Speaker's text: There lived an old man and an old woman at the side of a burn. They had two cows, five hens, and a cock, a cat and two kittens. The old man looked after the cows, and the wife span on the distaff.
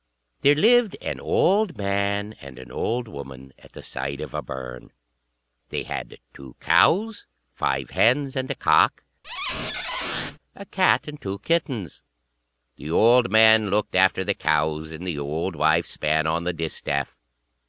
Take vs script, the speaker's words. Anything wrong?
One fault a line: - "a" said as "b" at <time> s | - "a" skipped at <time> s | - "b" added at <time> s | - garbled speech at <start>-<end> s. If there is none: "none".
- "old" added at 15.2 s